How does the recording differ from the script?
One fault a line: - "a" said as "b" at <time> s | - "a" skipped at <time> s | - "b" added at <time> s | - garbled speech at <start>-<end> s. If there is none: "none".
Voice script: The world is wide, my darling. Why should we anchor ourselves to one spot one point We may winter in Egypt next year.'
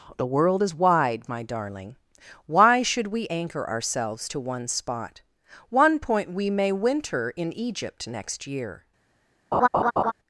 none